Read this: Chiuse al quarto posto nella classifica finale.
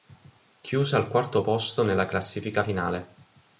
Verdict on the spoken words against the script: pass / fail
pass